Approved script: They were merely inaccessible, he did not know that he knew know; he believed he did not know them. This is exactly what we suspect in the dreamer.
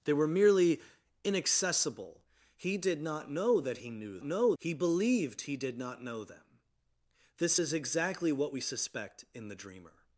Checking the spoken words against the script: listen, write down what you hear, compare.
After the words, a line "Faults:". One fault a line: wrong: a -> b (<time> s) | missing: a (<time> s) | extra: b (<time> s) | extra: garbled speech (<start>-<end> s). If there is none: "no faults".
They were merely inaccessible, he did not know that he knew know; he believed he did not know them. This is exactly what we suspect in the dreamer.
Faults:
no faults